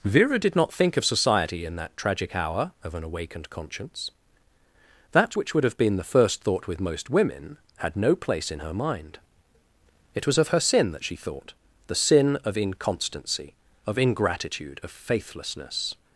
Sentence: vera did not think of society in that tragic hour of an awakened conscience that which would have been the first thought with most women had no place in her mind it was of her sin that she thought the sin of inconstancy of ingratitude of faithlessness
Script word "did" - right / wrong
right